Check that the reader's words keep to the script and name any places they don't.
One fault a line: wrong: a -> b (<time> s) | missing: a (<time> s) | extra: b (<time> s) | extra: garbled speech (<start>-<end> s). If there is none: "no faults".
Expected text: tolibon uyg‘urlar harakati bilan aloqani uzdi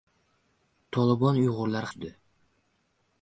missing: harakati bilan aloqani (1.9 s)